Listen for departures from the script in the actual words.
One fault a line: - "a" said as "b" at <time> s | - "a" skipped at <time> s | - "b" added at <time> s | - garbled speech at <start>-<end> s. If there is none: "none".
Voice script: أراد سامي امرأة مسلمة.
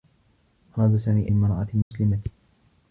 none